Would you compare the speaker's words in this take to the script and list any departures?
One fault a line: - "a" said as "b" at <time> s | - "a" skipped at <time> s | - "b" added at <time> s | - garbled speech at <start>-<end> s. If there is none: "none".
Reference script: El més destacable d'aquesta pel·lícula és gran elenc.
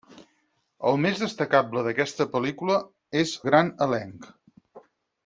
none